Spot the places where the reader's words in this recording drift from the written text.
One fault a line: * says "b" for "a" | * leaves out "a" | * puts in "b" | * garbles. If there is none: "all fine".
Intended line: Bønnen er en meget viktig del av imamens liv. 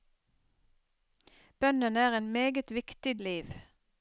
* leaves out "del av imamens"